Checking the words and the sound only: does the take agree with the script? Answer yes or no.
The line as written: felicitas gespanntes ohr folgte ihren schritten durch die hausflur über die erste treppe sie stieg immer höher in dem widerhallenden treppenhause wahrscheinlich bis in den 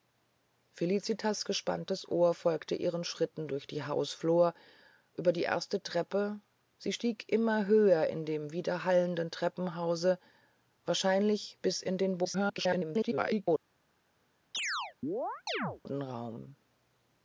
no